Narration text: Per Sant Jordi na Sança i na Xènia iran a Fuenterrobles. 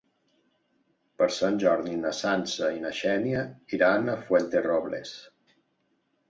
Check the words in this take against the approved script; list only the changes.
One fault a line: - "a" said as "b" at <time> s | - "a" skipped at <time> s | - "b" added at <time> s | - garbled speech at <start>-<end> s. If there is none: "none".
none